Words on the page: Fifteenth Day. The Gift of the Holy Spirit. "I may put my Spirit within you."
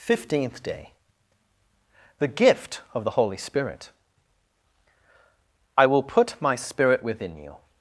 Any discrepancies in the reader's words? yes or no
yes